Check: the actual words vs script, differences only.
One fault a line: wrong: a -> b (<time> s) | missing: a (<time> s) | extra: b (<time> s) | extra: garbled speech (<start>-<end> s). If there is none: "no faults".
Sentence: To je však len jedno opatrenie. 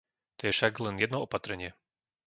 no faults